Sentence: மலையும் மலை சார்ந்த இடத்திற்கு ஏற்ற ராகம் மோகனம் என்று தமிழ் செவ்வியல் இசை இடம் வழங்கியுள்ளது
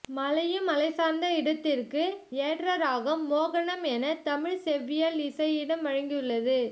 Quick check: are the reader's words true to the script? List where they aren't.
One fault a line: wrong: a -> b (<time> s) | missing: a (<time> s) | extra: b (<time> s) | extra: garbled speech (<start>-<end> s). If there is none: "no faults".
wrong: என்று -> என (3.9 s)